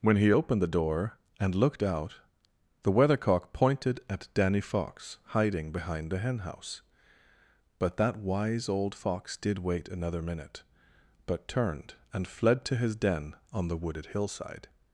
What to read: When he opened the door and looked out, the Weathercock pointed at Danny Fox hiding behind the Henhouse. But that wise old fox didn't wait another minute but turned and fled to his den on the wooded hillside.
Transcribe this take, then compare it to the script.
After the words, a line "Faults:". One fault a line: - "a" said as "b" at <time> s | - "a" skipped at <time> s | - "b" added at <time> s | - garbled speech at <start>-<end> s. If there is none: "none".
When he opened the door and looked out, the Weathercock pointed at Danny Fox hiding behind the Henhouse. But that wise old fox did wait another minute but turned and fled to his den on the wooded hillside.
Faults:
- "didn't" said as "did" at 9.4 s